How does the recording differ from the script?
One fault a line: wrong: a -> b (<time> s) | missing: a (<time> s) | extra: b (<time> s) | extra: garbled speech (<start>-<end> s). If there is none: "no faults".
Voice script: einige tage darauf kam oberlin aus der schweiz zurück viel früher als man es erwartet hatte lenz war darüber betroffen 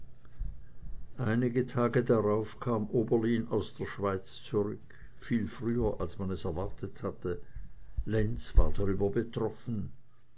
no faults